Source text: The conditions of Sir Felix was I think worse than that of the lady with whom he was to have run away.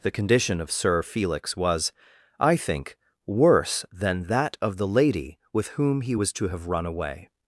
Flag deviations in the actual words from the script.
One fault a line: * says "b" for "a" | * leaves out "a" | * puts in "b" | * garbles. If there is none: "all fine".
* says "condition" for "conditions"